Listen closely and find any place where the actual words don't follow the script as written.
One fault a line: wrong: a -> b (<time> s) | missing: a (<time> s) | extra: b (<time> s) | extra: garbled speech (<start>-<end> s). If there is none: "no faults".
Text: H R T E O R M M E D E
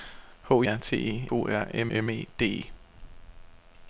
no faults